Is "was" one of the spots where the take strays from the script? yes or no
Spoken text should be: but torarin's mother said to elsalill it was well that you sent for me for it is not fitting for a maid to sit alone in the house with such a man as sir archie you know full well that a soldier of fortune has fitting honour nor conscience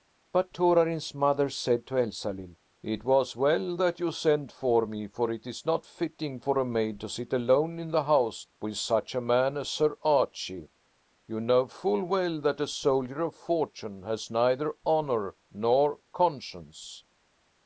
no